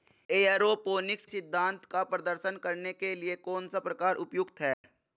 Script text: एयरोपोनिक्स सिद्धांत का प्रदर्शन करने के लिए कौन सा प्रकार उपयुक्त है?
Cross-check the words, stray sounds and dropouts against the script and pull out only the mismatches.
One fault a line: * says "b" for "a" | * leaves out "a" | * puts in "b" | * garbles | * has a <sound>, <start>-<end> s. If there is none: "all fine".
* has a dropout, 4.7-4.8 s